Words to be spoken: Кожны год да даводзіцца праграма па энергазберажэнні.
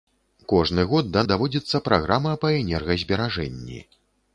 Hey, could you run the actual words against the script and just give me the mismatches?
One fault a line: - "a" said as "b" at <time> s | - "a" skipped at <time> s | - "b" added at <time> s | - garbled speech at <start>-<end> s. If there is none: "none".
none